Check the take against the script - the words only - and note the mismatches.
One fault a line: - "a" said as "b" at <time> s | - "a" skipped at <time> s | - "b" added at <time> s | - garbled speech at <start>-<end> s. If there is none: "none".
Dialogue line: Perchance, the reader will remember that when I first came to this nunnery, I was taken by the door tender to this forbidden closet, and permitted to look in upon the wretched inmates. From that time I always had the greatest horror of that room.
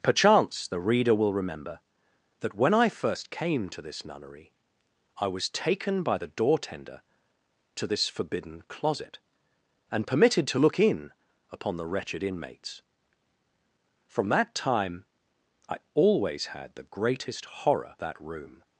- "of" skipped at 18.0 s